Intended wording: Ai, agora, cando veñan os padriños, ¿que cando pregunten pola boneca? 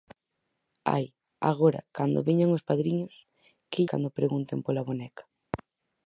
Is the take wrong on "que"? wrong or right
right